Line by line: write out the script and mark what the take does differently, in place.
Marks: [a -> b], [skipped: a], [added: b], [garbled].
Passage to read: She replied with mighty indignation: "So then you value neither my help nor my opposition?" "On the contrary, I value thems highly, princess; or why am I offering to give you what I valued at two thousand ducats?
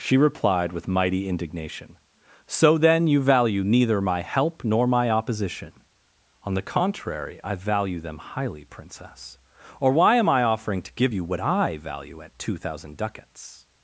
She replied with mighty indignation: "So then you value neither my help nor my opposition?" "On the contrary, I value [thems -> them] highly, princess; or why am I offering to give you what I [valued -> value] at two thousand ducats?